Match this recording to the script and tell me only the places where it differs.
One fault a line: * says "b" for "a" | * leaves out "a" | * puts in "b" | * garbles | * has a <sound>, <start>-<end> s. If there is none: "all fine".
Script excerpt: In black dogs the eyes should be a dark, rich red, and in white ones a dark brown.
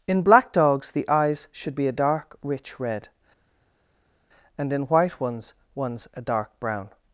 * puts in "ones"